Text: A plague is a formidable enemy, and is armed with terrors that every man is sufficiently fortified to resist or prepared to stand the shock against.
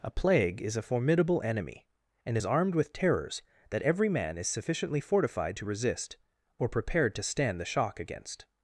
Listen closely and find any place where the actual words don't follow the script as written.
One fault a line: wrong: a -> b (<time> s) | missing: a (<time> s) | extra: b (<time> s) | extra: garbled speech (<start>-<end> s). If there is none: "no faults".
no faults